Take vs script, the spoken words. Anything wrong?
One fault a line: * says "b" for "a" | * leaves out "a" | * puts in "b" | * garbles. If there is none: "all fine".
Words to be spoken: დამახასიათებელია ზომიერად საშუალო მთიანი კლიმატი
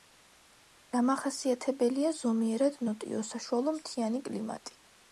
* puts in "ნოტიო"